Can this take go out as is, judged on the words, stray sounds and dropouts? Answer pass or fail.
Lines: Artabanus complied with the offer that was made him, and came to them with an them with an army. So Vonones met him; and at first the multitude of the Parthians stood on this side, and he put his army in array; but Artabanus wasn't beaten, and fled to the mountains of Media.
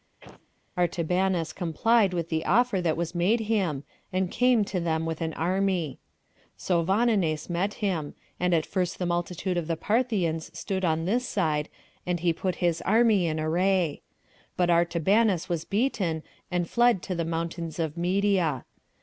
fail